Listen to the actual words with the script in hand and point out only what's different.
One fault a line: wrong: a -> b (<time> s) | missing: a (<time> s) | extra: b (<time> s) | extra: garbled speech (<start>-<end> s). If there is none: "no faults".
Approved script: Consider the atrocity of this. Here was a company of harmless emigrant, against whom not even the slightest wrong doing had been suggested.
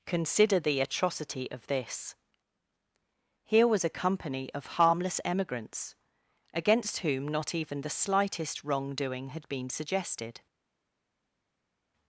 wrong: emigrant -> emigrants (5.2 s)